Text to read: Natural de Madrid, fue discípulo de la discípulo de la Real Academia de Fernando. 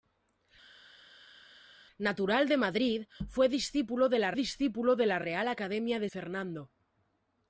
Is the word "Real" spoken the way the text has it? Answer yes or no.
yes